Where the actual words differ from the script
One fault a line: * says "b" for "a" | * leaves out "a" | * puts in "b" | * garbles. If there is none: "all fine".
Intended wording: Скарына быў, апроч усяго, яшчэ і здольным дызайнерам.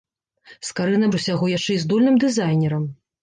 * leaves out "быў апроч"